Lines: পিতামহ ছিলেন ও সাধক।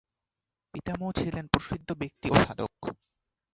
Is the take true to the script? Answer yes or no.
no